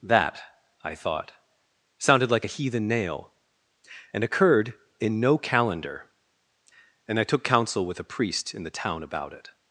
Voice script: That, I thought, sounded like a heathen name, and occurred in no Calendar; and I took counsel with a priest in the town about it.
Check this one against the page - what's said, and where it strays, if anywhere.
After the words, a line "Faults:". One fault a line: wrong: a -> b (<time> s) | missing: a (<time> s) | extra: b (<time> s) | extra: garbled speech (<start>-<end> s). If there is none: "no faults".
That, I thought, sounded like a heathen nail, and occurred in no Calendar; and I took counsel with a priest in the town about it.
Faults:
wrong: name -> nail (2.9 s)